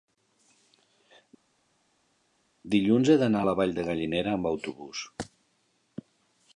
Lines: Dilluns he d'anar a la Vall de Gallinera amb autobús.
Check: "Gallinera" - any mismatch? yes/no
no